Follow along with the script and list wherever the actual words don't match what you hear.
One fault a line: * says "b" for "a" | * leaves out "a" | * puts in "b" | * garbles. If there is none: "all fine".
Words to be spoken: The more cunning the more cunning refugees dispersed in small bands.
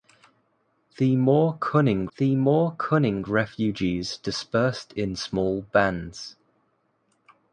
all fine